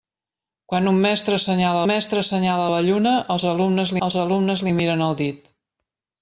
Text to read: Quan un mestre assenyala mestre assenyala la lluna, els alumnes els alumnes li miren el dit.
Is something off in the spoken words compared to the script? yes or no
no